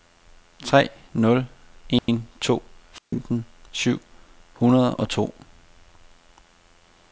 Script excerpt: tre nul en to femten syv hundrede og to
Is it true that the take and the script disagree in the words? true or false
false